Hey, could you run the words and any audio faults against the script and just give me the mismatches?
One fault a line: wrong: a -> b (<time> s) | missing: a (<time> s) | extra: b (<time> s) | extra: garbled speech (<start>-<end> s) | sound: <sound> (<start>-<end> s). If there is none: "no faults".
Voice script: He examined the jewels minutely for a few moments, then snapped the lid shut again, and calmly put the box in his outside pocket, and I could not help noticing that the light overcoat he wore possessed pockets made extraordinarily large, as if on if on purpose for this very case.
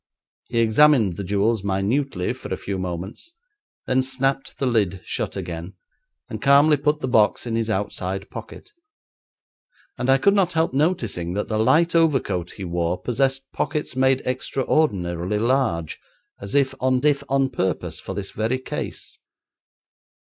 no faults